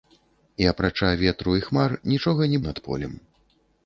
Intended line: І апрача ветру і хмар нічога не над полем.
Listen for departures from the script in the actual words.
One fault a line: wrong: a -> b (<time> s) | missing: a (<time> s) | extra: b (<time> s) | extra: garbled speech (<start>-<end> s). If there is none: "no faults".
no faults